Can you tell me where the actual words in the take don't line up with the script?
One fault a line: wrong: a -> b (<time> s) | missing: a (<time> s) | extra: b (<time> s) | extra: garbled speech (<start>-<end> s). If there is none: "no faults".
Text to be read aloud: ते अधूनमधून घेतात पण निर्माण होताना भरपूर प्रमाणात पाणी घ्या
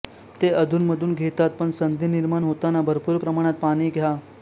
extra: संधी (1.7 s)